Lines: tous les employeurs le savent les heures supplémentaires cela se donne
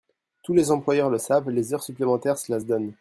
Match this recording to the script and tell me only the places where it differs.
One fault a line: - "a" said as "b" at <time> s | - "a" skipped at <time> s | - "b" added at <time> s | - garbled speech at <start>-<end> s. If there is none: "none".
none